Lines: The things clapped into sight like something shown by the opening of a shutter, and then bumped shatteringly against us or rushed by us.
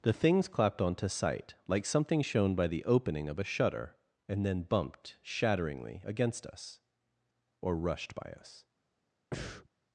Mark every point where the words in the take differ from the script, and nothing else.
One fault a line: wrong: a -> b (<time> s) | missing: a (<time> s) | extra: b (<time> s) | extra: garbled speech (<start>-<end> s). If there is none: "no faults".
wrong: into -> onto (0.8 s)